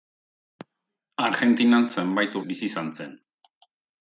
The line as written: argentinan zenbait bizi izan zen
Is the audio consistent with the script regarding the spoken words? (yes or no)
yes